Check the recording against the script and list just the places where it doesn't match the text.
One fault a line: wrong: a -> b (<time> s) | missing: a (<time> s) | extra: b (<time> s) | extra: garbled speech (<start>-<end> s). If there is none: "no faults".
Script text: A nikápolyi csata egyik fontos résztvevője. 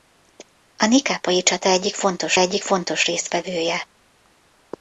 extra: egyik fontos (2.4 s)